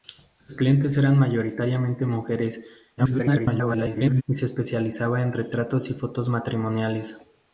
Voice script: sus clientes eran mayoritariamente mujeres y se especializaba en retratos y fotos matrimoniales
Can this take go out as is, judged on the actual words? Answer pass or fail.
fail